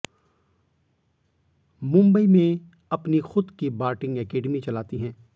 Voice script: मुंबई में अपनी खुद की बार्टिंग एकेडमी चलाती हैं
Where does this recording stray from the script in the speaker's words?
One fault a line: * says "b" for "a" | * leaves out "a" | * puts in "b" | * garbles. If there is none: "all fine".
all fine